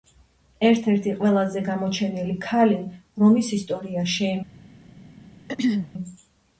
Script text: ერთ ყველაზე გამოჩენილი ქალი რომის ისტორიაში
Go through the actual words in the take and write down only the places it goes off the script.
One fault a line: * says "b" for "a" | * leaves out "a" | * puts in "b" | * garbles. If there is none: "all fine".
* puts in "ერთი"